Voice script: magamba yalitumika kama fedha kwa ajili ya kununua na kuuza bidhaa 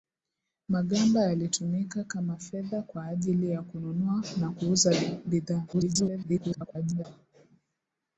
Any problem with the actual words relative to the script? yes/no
yes